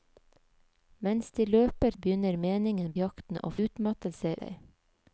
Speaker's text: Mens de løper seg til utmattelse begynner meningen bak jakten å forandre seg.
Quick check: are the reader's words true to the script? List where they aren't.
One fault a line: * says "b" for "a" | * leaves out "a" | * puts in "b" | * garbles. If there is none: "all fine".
* leaves out "seg til utmattelse"
* leaves out "bak"
* says "utmattelse" for "forandre"